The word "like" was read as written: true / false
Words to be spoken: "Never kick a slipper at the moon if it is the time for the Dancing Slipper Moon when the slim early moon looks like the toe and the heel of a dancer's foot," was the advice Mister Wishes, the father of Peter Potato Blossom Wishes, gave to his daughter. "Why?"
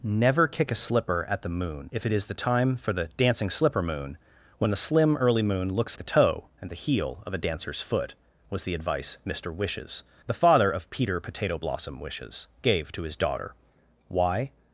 false